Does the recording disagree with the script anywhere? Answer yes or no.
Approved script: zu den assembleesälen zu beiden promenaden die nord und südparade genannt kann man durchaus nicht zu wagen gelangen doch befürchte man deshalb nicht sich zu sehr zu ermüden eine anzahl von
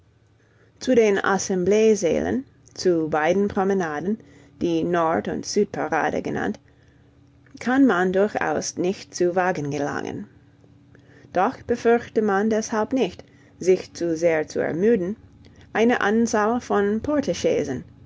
no